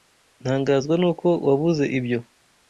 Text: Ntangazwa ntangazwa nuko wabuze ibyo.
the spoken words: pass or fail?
fail